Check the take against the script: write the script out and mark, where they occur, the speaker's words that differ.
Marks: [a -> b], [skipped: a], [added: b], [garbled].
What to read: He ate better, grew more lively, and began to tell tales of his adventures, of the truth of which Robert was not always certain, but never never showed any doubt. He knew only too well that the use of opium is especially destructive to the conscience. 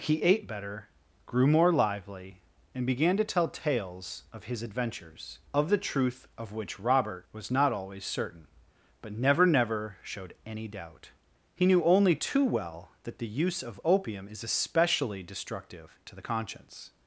He ate better, grew more lively, and began to tell tales of his adventures, of the truth of which Robert was not always certain, but never never showed any doubt. He knew only too well that the use of opium is especially destructive to the conscience.